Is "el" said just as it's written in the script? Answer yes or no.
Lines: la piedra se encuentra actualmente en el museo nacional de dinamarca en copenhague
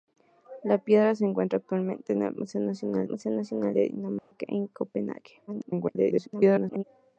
yes